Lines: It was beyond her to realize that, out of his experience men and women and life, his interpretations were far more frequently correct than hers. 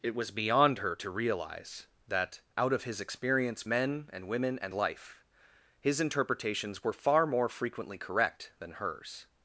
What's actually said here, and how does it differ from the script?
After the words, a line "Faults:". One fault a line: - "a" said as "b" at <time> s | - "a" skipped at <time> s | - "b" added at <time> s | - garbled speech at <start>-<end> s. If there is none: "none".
It was beyond her to realize that, out of his experience men and women and life, his interpretations were far more frequently correct than hers.
Faults:
none